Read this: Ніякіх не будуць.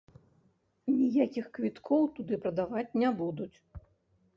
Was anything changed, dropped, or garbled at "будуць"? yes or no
no